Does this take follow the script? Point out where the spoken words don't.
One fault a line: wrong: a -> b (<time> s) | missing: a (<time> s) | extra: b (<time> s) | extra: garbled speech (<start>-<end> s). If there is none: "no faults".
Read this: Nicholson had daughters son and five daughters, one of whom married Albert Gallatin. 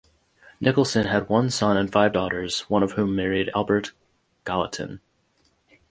wrong: daughters -> one (1.3 s)